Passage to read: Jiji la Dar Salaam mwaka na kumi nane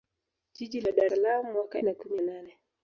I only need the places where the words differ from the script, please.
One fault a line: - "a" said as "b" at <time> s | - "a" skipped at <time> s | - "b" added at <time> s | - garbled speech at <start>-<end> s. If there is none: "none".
none